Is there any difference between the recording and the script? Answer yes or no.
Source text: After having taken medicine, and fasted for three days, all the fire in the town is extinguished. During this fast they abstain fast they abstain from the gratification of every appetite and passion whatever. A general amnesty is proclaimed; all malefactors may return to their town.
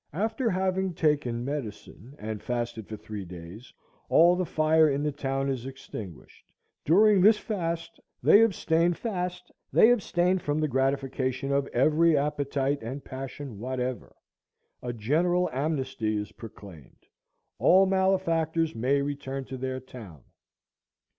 no